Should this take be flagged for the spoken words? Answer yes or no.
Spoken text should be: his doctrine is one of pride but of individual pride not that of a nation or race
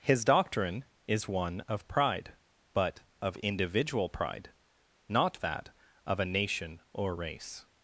no